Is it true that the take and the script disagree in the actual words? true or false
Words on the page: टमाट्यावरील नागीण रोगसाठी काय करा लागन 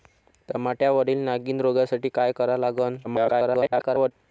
true